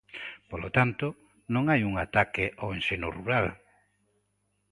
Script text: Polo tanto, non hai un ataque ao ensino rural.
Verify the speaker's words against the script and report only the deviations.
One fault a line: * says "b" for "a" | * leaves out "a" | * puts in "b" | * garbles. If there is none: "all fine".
all fine